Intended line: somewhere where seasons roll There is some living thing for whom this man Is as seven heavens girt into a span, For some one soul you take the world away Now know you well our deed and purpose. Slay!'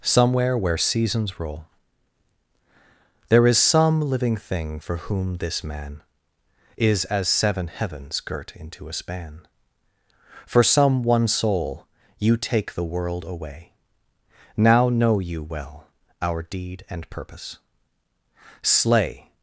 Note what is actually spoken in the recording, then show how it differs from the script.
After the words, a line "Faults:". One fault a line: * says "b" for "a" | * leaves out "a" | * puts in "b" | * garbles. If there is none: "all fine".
somewhere where seasons roll There is some living thing for whom this man Is as seven heavens girt into a span, For some one soul you take the world away Now know you well our deed and purpose. Slay!'
Faults:
all fine